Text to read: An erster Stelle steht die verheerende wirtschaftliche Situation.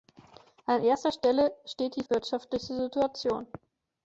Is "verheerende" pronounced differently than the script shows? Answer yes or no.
yes